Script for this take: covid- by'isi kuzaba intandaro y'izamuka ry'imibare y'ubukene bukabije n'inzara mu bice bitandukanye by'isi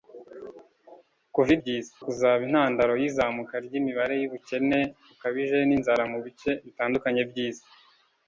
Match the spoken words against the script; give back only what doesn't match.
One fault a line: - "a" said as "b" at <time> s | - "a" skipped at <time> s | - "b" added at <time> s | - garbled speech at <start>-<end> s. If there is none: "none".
none